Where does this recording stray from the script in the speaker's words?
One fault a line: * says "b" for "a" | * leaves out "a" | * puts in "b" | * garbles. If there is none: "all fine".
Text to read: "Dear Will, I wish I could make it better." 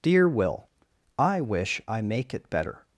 * leaves out "could"